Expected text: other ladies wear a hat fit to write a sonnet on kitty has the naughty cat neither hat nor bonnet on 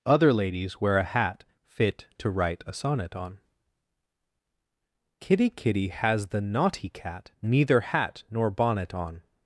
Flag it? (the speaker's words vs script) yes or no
yes